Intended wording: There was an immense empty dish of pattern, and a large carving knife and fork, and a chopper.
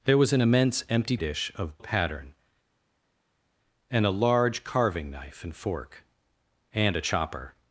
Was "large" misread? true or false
false